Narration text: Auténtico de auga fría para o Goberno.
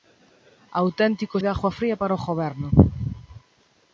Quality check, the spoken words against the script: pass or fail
pass